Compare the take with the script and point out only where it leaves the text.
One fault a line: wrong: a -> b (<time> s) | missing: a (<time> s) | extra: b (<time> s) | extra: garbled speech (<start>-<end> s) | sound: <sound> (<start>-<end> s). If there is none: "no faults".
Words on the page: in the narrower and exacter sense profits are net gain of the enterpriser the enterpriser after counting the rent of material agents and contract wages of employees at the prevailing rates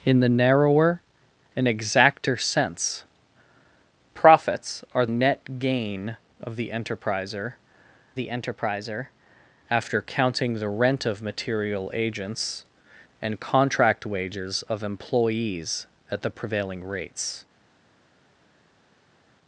no faults